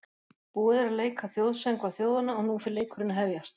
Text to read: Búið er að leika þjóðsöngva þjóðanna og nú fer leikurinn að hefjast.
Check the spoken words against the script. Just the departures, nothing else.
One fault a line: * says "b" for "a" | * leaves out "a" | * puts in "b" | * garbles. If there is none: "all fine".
all fine